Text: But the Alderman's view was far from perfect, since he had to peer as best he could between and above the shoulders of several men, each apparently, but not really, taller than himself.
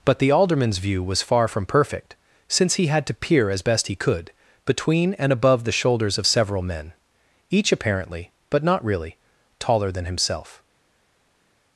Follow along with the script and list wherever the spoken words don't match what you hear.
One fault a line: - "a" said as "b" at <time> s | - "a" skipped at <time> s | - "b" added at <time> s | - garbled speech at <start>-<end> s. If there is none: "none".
none